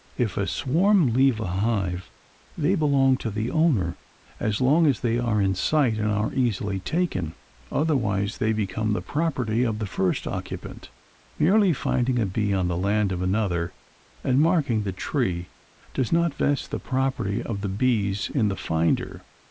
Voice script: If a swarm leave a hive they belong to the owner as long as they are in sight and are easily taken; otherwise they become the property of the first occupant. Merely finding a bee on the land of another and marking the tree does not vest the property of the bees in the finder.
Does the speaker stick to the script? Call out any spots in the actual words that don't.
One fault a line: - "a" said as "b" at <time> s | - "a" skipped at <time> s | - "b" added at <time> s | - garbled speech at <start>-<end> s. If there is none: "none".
none